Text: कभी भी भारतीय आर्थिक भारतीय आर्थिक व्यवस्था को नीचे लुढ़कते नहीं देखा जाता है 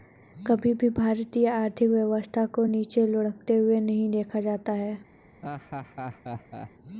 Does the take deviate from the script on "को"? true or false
false